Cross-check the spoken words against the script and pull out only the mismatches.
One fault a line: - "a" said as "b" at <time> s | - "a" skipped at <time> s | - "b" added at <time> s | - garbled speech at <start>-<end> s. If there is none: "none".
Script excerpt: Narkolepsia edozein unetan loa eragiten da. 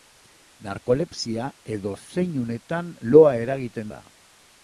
none